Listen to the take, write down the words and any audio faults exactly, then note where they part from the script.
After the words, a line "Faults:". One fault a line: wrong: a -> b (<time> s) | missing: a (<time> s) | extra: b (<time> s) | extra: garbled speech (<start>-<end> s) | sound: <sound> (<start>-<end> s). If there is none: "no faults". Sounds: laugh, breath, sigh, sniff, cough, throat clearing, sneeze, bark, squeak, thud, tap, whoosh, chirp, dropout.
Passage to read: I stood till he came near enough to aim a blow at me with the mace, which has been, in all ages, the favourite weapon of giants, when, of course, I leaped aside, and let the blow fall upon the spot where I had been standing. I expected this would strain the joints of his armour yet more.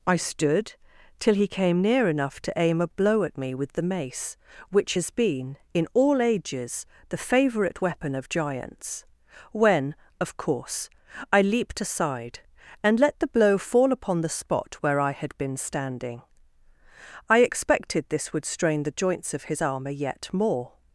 I stood till he came near enough to aim a blow at me with the mace, which has been, in all ages, the favourite weapon of giants, when, of course, I leaped aside, and let the blow fall upon the spot where I had been standing. I expected this would strain the joints of his armour yet more.
Faults:
no faults